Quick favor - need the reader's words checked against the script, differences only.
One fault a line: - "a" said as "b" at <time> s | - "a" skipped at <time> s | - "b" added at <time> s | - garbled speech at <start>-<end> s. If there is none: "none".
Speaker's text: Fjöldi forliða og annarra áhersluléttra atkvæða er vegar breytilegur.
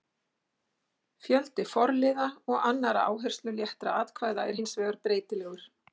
- "hins" added at 4.6 s